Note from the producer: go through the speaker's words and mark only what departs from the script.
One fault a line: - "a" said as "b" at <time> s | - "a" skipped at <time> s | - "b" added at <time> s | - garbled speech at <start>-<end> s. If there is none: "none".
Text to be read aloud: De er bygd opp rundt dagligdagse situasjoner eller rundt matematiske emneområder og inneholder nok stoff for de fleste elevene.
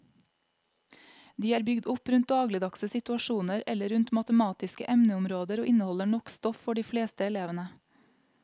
none